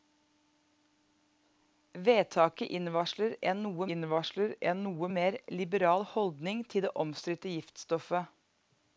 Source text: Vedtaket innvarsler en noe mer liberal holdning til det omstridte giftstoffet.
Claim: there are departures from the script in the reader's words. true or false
true